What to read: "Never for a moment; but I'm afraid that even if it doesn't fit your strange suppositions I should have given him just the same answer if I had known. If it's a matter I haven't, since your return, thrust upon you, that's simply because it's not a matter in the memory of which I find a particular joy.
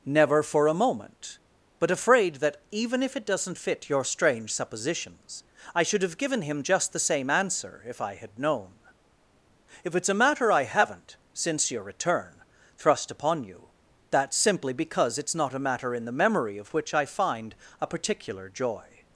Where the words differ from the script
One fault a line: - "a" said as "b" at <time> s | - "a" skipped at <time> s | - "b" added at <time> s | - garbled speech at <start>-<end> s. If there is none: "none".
- "I'm" skipped at 1.9 s